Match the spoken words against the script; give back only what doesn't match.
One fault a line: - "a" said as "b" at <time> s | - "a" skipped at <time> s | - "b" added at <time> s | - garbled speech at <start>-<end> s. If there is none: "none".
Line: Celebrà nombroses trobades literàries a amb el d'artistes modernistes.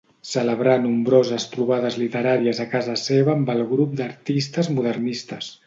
- "casa seva" added at 2.7 s
- "grup" added at 3.8 s